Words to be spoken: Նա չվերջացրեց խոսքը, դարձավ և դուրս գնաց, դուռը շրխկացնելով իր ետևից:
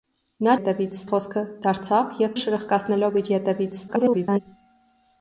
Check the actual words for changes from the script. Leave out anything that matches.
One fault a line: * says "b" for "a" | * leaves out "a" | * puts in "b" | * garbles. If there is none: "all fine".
* says "ետևից" for "չվերջացրեց"
* leaves out "դուրս գնաց դուռը"
* garbles